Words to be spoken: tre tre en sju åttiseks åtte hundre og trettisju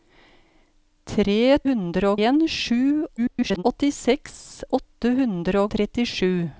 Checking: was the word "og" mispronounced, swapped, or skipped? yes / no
yes